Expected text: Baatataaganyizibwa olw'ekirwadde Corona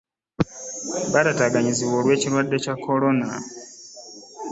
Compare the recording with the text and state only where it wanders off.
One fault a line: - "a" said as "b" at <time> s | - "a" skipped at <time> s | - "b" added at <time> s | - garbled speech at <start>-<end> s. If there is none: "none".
- "Kya" added at 2.6 s